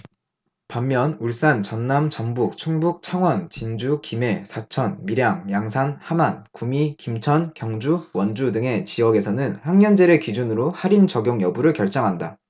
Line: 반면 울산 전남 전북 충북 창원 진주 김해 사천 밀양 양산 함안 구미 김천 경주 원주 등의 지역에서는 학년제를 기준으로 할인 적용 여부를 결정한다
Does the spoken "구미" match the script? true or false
true